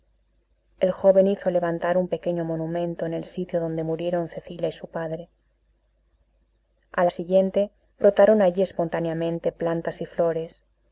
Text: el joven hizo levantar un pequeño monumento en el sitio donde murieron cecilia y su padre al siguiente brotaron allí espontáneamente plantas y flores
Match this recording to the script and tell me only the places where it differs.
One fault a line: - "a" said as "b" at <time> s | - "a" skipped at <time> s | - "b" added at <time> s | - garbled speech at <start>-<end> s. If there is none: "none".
none